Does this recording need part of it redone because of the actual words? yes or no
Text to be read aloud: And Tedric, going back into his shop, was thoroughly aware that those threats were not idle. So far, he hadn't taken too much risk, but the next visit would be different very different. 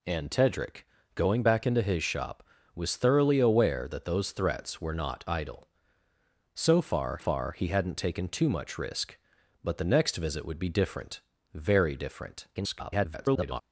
yes